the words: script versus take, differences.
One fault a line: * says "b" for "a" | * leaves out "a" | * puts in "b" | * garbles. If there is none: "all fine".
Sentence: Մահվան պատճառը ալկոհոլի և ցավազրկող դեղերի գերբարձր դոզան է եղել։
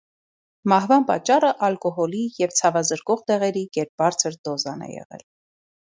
all fine